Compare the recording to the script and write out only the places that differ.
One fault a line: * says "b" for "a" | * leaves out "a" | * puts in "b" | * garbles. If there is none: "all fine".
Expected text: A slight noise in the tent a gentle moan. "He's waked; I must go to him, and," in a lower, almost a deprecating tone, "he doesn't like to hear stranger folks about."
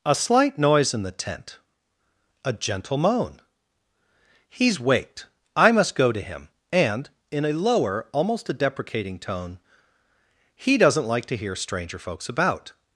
all fine